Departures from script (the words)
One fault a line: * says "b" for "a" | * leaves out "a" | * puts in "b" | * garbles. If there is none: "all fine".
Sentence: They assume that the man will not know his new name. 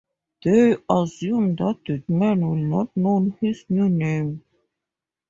all fine